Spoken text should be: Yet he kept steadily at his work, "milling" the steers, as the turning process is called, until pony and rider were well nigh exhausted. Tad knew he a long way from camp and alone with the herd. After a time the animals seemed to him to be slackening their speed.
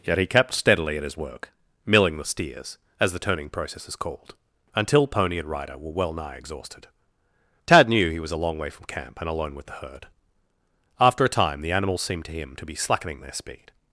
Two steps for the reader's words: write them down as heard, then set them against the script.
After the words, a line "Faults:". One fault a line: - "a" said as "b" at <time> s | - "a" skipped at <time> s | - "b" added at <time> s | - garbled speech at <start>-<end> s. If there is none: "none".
Yet he kept steadily at his work, "milling" the steers, as the turning process is called, until pony and rider were well nigh exhausted. Tad knew he was a long way from camp and alone with the herd. After a time the animals seemed to him to be slackening their speed.
Faults:
- "was" added at 8.2 s